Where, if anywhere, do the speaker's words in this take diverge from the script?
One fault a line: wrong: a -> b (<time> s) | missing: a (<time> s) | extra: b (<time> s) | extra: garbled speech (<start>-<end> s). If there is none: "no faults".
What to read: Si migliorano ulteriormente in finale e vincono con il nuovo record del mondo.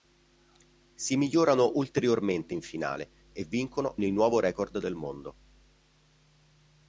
missing: con (4.0 s)